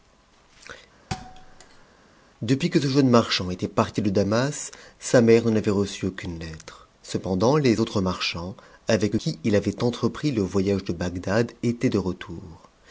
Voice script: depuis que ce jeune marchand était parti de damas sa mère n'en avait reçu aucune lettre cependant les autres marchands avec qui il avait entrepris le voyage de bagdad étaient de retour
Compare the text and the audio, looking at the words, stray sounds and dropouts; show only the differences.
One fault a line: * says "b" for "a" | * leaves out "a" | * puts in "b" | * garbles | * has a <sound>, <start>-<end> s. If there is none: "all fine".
* has a thud, 1.1-1.9 s